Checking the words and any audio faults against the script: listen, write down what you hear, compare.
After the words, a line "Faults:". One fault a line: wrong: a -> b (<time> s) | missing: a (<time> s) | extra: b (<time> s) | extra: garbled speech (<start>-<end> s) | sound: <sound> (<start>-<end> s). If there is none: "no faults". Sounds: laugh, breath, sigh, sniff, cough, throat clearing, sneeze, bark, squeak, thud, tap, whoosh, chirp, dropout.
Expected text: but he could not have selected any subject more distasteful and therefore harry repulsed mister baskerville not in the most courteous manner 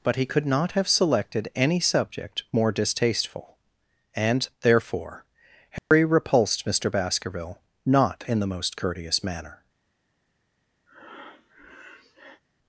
but he could not have selected any subject more distasteful and therefore harry repulsed mister baskerville not in the most courteous manner
Faults:
sound: dropout (5.8-5.9 s)
sound: breath (10.9-12.4 s)